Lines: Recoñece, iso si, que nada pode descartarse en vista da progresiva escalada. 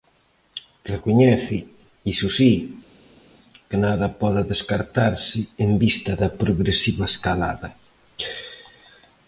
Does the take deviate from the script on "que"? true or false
false